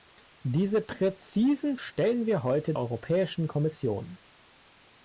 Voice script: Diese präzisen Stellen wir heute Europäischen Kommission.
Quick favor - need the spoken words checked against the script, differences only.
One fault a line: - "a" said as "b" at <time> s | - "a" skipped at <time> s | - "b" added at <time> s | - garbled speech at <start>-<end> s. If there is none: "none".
none